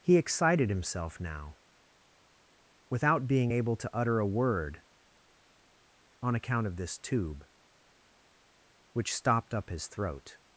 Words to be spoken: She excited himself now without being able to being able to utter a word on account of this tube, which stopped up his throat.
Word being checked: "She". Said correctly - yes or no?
no